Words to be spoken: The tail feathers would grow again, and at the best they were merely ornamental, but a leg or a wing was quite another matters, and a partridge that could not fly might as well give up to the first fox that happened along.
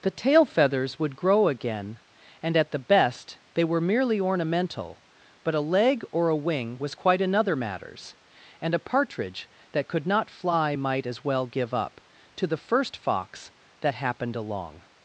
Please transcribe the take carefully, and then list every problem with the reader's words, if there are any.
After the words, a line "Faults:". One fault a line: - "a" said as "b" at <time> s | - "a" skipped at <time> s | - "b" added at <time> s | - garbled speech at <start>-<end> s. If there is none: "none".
The tail feathers would grow again, and at the best they were merely ornamental, but a leg or a wing was quite another matters, and a partridge that could not fly might as well give up to the first fox that happened along.
Faults:
none